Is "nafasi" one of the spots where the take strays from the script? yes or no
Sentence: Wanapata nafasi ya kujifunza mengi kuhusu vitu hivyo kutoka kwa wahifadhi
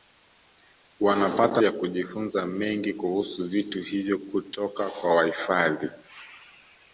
yes